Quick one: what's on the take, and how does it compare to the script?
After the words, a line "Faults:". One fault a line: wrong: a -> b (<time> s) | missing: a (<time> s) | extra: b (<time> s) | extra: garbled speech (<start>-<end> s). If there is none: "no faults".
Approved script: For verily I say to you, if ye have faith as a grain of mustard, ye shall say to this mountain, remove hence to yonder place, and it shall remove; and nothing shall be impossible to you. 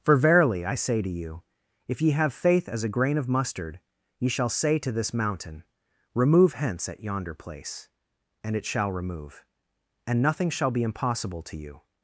For verily I say to you, if ye have faith as a grain of mustard, ye shall say to this mountain, remove hence at yonder place, and it shall remove; and nothing shall be impossible to you.
Faults:
wrong: to -> at (6.9 s)